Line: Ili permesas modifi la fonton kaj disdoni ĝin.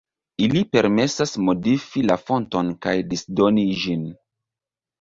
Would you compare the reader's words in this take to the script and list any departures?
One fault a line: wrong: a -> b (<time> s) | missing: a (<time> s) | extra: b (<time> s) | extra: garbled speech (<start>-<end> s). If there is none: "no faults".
no faults